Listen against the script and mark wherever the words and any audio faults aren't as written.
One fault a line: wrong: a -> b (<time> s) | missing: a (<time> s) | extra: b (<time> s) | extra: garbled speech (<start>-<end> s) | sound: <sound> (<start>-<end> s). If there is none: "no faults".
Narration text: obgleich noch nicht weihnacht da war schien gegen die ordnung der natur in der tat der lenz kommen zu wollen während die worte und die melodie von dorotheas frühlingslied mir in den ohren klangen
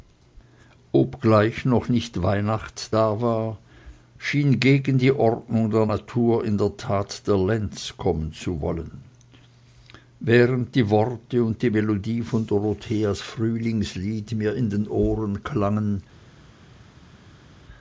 no faults